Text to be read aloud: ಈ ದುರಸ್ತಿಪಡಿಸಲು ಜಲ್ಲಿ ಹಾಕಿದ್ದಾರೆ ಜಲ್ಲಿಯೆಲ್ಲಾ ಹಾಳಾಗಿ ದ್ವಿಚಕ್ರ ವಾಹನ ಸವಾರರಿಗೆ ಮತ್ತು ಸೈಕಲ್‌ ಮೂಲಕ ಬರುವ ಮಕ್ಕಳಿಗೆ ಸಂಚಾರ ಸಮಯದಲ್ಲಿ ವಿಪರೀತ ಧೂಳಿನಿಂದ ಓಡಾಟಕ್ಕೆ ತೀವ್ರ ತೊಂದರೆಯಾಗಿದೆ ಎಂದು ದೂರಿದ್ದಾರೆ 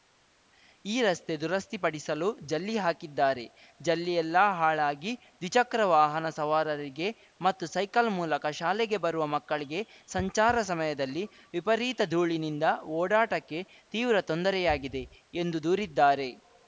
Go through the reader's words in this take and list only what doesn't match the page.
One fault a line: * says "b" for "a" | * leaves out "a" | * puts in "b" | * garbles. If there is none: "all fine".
* puts in "ರಸ್ತೆ"
* puts in "ಶಾಲೆಗೆ"